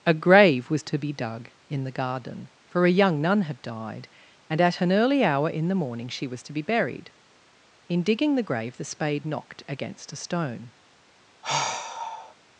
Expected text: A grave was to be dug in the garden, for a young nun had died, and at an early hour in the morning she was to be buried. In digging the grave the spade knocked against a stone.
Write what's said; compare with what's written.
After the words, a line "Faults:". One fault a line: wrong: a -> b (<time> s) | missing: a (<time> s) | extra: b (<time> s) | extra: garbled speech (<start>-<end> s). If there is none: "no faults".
A grave was to be dug in the garden, for a young nun had died, and at an early hour in the morning she was to be buried. In digging the grave the spade knocked against a stone.
Faults:
no faults